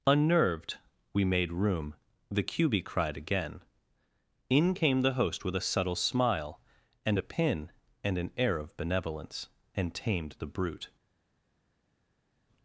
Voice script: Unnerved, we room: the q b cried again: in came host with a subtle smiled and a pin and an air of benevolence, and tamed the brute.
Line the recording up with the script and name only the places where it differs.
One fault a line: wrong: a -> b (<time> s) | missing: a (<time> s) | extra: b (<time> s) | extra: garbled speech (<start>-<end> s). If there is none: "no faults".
extra: made (1.2 s)
extra: the (5.0 s)
wrong: smiled -> smile (6.0 s)